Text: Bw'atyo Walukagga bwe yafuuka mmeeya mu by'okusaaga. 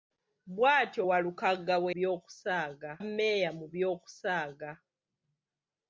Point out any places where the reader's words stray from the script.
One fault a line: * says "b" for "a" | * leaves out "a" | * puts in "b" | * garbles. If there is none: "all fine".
* says "by'okusaaga" for "yafuuka"